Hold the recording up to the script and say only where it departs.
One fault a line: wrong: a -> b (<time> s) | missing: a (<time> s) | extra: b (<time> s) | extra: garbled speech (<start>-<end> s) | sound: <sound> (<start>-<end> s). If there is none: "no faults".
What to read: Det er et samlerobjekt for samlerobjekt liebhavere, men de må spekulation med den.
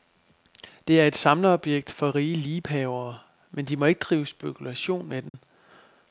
wrong: samlerobjekt -> rige (2.1 s)
extra: ikke drive (3.8 s)
sound: dropout (5.3-5.3 s)